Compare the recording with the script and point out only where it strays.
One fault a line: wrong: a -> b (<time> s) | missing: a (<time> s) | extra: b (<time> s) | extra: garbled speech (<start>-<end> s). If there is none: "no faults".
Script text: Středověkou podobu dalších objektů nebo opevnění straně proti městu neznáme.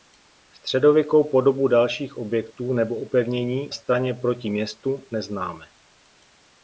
no faults